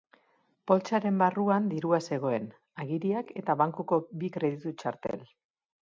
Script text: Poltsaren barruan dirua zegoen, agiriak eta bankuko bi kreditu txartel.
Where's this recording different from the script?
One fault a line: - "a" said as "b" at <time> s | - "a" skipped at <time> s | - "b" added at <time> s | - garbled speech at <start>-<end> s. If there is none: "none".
none